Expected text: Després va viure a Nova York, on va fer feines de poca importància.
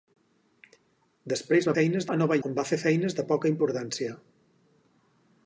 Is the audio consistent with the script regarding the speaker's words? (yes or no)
no